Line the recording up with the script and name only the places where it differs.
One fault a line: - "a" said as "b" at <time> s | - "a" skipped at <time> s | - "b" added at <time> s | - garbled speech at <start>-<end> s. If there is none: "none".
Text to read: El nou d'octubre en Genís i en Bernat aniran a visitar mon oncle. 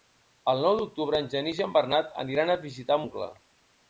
- "mon" skipped at 3.0 s